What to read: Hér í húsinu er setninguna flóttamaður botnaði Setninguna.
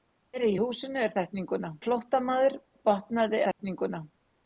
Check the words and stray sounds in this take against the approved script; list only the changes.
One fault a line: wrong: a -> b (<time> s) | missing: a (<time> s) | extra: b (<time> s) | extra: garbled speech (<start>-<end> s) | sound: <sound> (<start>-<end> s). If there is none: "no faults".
sound: dropout (3.5-3.6 s)